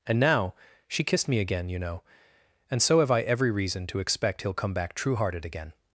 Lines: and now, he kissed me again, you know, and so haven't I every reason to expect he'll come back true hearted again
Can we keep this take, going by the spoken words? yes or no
no